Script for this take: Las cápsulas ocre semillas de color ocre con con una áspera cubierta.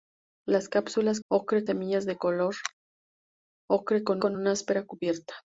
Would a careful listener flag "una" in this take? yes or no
no